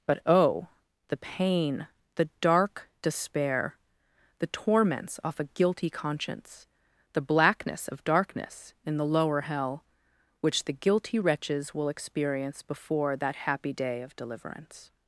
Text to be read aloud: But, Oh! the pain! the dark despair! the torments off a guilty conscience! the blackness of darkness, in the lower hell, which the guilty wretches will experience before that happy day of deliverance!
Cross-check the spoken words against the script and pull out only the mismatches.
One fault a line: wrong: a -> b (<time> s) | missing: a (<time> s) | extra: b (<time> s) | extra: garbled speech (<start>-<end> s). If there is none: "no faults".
no faults